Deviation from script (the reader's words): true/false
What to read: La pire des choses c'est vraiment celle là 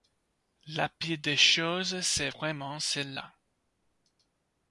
false